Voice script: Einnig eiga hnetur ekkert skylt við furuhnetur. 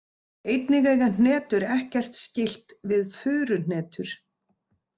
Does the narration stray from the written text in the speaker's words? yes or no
no